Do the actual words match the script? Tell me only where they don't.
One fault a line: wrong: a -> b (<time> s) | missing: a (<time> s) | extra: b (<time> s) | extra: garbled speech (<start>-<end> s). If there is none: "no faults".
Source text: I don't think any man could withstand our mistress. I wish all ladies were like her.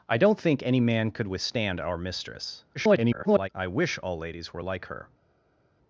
extra: garbled speech (2.7-3.5 s)